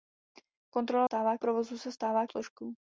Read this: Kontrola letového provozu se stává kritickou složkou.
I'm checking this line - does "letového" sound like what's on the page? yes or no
no